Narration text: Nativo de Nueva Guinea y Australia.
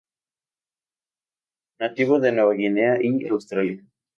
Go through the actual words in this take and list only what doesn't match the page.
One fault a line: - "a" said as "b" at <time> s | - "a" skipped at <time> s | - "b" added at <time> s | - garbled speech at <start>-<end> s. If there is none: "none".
none